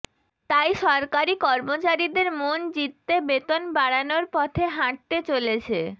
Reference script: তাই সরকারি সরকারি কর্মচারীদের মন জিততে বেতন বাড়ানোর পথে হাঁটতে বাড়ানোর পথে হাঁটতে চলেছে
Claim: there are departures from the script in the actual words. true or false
true